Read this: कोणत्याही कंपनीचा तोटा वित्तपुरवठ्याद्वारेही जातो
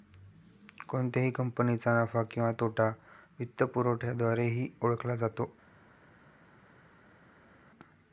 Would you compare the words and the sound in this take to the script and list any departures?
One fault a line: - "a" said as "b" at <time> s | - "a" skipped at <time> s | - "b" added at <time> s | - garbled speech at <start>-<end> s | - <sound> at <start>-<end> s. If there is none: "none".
- "नफा किंवा" added at 2.0 s
- "ओळखला" added at 4.8 s